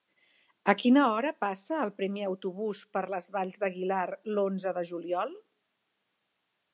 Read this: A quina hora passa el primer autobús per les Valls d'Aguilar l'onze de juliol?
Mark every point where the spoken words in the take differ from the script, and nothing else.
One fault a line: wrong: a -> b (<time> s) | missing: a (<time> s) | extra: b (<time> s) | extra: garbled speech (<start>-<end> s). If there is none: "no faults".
no faults